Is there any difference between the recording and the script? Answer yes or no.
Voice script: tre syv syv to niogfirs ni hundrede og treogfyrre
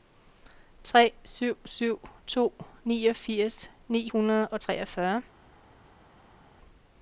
no